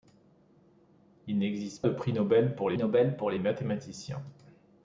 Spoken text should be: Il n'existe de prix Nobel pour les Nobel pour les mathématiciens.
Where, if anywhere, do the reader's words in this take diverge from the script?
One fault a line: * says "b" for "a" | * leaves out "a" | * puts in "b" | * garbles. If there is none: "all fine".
all fine